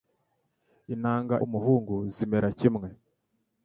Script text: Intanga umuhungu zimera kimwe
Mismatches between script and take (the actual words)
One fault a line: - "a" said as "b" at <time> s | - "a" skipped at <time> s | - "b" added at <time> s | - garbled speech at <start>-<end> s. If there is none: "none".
none